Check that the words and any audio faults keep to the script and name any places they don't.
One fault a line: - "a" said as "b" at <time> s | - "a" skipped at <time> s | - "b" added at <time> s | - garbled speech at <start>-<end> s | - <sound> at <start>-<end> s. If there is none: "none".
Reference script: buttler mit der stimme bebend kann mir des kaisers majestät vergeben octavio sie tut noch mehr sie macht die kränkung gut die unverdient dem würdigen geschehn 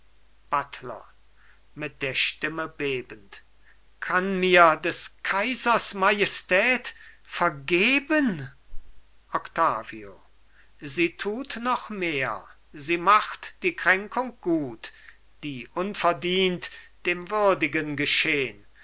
none